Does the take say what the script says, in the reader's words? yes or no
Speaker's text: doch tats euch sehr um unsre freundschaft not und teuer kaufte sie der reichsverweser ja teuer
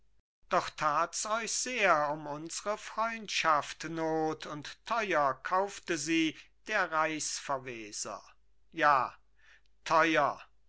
yes